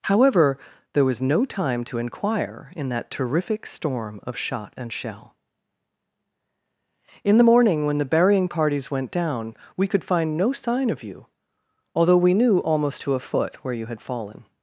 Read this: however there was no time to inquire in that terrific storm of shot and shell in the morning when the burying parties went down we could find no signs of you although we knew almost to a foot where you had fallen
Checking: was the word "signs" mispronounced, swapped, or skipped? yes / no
yes